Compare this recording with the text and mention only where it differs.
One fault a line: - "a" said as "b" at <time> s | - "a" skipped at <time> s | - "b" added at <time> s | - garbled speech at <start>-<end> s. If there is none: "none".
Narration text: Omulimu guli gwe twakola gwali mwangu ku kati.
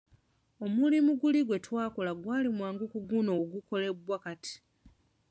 - "guno ogukolebwa" added at 3.1 s